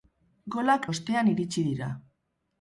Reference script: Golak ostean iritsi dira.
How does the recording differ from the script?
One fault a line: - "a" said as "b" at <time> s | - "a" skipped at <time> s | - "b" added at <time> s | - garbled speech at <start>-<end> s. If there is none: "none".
none